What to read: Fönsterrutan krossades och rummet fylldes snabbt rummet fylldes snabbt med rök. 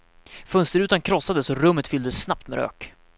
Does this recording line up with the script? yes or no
no